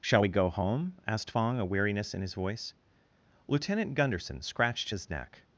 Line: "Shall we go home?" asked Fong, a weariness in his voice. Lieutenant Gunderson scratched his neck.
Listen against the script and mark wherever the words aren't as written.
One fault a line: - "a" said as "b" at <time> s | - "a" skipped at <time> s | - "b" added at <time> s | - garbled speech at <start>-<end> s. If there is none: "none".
none